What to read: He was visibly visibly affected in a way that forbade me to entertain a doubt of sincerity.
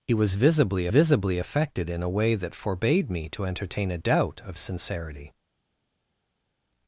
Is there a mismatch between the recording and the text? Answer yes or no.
no